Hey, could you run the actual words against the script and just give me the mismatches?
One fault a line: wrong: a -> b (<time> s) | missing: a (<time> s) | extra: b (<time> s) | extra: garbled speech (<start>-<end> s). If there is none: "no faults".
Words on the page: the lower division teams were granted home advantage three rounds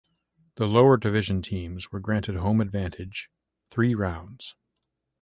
no faults